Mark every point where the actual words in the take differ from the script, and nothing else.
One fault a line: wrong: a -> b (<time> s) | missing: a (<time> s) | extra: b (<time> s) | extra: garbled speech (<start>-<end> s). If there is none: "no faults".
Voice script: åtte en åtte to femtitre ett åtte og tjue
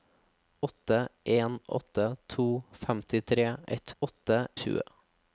no faults